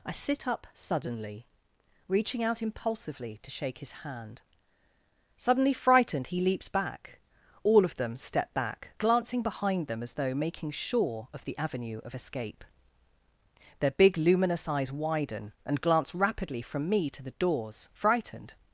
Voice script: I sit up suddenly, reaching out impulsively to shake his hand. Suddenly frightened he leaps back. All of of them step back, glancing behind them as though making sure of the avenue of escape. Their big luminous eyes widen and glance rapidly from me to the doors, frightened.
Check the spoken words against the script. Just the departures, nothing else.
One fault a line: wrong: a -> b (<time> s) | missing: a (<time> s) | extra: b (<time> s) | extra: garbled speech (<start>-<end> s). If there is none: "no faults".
missing: of (8.0 s)